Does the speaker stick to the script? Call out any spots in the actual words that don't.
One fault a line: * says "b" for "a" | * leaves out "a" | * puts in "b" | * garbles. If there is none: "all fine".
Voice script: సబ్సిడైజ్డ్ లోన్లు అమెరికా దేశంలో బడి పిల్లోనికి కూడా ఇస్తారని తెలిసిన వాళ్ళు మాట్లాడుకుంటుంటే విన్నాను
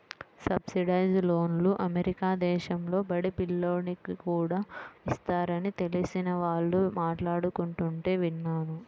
all fine